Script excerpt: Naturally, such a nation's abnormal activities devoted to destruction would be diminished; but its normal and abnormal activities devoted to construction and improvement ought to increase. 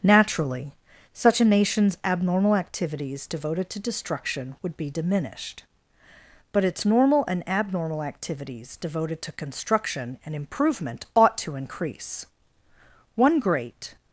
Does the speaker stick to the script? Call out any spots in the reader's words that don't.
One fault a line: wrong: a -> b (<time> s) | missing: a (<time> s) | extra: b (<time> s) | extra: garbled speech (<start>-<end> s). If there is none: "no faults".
extra: One great (13.2 s)